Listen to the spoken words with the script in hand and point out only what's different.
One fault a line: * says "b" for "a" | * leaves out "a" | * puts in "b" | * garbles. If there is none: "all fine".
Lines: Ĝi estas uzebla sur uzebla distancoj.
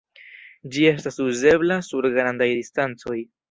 * says "grandaj" for "uzebla"